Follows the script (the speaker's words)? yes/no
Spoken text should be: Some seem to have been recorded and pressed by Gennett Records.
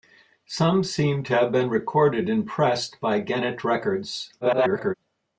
no